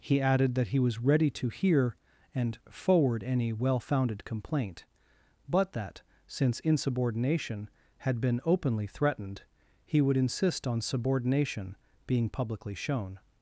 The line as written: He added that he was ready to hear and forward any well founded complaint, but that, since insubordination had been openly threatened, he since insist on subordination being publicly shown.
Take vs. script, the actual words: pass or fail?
fail